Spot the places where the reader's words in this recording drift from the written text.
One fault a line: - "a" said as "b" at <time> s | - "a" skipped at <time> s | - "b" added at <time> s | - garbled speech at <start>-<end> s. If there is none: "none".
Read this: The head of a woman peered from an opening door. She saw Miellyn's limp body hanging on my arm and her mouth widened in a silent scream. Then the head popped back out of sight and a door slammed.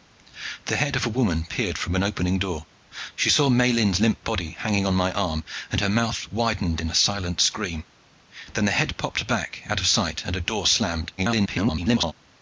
- garbled speech at 11.2-12.1 s